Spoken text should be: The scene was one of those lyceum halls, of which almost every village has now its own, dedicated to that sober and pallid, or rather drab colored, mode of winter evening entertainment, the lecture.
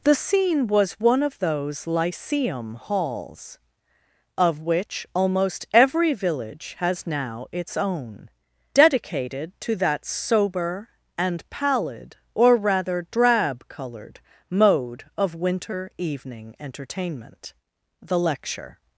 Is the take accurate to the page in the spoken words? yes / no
yes